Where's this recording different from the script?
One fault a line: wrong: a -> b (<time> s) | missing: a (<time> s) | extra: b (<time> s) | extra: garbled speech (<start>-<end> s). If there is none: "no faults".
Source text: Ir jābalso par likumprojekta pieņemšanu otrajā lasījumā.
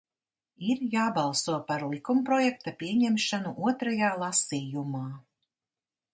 no faults